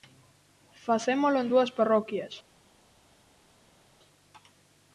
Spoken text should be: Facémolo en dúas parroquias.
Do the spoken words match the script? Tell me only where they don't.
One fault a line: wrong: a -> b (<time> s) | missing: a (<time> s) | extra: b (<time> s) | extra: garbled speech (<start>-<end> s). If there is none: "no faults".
no faults